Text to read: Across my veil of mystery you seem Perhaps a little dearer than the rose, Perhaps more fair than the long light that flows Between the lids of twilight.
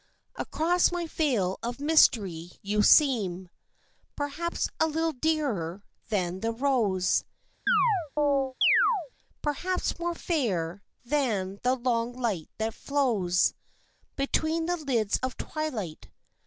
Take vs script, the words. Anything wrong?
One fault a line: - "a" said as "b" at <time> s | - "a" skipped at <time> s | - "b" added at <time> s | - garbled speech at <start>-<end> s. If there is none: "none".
none